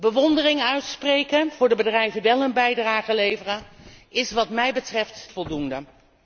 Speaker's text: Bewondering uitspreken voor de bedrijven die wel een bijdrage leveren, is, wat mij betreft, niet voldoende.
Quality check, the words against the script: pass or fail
fail